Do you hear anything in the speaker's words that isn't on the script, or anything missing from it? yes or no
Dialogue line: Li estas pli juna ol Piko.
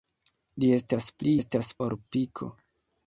yes